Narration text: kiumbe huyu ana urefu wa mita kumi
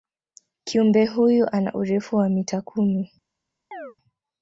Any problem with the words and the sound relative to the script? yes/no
yes